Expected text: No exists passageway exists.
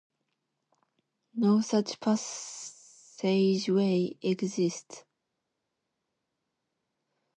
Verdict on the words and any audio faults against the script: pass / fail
fail